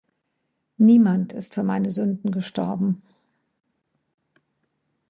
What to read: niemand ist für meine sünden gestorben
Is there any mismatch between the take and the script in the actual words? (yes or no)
no